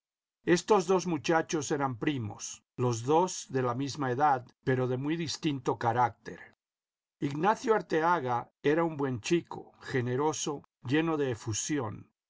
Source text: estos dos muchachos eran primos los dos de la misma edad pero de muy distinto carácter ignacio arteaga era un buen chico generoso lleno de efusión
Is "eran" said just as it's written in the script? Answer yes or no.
yes